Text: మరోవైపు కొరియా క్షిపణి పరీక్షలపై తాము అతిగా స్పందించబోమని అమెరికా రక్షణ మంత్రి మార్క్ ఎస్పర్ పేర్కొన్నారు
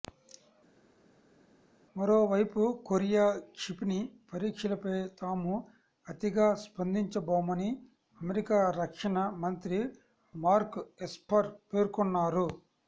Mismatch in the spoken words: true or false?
false